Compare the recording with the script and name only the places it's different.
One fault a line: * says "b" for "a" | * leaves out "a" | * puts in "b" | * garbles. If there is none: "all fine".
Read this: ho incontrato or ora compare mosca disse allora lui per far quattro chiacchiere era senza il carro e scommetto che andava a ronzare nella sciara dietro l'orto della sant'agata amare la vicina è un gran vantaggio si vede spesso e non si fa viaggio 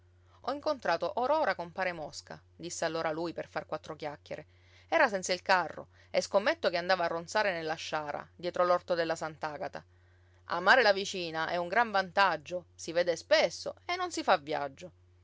all fine